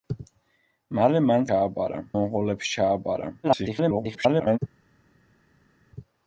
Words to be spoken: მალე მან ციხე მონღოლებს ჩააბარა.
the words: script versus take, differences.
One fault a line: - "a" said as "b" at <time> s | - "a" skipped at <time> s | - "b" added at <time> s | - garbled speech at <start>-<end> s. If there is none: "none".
- "ციხე" said as "ჩააბარა" at 1.5 s
- garbled speech at 3.4-4.6 s